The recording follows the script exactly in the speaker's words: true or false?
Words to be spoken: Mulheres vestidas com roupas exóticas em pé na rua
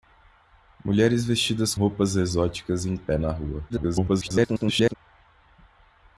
false